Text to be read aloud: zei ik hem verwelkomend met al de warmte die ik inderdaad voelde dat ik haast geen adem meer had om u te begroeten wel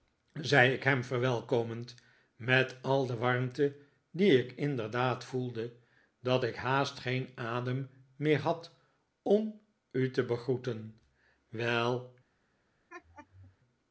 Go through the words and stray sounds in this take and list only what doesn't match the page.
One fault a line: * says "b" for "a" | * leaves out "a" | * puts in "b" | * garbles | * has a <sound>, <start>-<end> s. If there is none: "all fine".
* has a laugh, 12.9-13.6 s